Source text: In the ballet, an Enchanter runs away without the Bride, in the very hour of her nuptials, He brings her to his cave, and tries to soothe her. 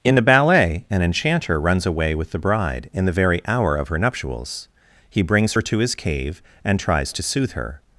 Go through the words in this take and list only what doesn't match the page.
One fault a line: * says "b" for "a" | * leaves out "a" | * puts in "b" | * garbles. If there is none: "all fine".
* says "with" for "without"